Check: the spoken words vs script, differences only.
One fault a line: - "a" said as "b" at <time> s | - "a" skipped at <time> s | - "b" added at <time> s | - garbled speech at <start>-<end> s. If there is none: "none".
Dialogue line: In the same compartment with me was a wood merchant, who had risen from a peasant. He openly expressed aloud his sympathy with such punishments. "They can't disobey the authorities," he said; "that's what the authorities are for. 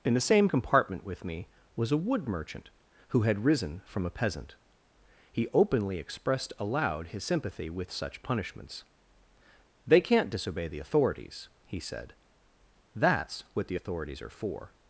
none